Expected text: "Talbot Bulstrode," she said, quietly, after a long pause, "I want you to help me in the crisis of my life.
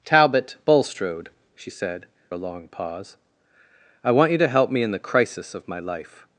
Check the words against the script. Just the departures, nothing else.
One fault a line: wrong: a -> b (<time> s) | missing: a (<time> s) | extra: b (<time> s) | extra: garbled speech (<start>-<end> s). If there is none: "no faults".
missing: quietly after (2.1 s)